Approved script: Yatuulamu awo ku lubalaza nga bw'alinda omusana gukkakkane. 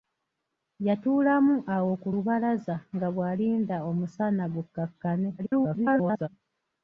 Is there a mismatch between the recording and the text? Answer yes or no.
yes